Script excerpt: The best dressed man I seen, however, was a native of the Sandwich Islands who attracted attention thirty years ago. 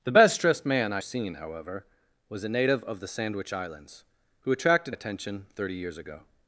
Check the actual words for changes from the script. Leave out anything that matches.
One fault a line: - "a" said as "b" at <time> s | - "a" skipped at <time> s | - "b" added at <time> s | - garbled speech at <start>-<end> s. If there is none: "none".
none